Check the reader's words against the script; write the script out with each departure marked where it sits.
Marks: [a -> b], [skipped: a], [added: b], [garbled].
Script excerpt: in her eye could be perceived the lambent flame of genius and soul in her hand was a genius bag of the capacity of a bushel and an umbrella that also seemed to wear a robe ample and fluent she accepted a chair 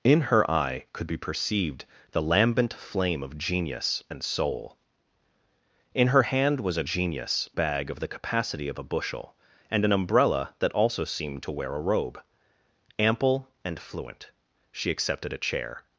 in her eye could be perceived the lambent flame of genius and soul in her hand was a genius bag of the capacity of a bushel and an umbrella that also seemed to wear a robe ample and fluent she accepted a chair